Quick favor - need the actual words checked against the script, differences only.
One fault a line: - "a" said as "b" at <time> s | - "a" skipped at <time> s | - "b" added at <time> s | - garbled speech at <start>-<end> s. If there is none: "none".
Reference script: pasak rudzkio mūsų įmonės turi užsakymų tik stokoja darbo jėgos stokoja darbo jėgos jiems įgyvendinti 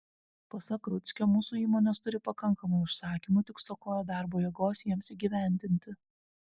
- "pakankamai" added at 2.3 s
- "stokoja darbo jėgos" skipped at 4.9 s